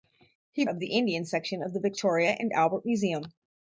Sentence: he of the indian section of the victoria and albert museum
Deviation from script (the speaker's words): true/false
false